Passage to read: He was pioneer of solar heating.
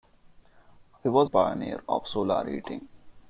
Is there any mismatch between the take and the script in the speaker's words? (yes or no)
no